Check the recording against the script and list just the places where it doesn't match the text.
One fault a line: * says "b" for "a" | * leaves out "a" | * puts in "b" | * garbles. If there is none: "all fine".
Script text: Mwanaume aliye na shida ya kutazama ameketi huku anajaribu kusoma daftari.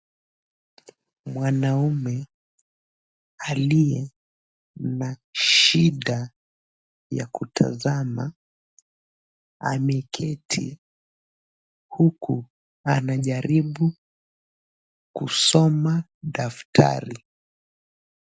all fine